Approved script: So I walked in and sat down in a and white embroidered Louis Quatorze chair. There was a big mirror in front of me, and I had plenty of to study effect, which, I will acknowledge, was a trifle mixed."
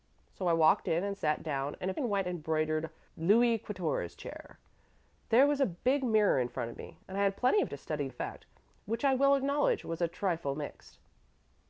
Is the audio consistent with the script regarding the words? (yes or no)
yes